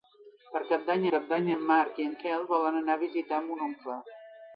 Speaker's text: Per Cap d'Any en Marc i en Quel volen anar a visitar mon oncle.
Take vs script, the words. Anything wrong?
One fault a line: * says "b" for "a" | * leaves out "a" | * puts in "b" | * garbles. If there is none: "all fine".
* puts in "Cap d'Any"